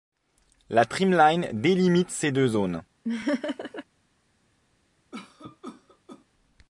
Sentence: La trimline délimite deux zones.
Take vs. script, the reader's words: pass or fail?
fail